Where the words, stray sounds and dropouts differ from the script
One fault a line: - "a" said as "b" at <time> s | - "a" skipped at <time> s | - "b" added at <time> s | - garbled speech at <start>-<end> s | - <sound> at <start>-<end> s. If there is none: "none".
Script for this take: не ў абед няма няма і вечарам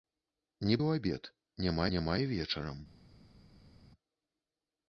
none